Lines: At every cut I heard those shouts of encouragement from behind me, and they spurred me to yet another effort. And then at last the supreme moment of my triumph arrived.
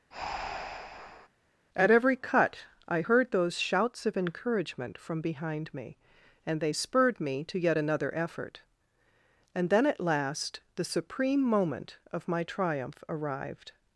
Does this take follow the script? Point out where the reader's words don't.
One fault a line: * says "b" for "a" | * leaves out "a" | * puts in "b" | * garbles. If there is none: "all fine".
all fine